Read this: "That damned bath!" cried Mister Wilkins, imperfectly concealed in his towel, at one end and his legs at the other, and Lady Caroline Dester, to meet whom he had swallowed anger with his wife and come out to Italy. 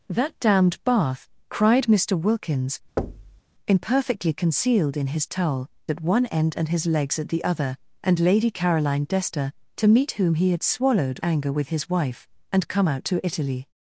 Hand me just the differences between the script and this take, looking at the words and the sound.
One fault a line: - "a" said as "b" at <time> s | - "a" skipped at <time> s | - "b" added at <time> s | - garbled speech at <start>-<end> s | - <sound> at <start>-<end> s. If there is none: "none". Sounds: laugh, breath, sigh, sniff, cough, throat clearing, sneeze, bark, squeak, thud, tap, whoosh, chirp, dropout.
- thud at 3.0-3.4 s